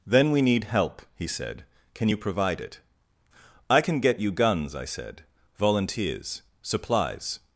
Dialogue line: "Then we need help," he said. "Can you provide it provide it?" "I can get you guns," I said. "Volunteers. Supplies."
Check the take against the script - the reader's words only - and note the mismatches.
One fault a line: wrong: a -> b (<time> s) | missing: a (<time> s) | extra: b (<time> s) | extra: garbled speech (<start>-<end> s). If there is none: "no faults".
missing: provide it (2.8 s)